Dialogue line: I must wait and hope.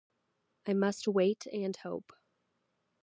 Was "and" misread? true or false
false